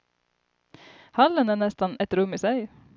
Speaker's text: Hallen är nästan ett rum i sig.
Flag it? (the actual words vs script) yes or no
no